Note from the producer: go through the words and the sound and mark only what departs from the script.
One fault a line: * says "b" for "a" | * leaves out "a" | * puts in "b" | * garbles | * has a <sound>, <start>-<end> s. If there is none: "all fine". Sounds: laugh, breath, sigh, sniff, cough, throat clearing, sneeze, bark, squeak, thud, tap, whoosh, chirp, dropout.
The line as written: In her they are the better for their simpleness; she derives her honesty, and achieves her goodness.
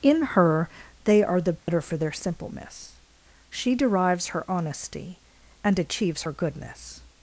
* has a dropout, 1.6-1.7 s